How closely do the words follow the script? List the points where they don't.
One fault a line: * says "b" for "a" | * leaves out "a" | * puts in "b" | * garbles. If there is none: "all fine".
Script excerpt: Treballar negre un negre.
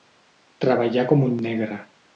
* says "com" for "negre"